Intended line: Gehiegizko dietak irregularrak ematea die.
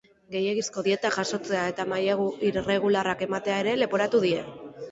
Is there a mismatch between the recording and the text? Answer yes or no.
yes